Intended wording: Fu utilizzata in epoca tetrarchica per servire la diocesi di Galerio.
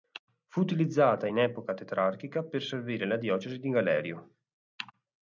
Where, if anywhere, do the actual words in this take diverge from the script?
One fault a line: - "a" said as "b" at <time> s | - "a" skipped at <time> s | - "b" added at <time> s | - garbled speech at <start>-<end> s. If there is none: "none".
none